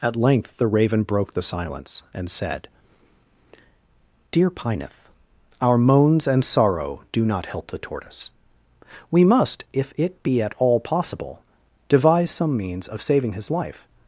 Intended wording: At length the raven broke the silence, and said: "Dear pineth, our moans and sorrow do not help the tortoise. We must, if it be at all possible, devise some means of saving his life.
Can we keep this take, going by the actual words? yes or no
yes